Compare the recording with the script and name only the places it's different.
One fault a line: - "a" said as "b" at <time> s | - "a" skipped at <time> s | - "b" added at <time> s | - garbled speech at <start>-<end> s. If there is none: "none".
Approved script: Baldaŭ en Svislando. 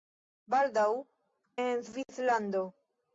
none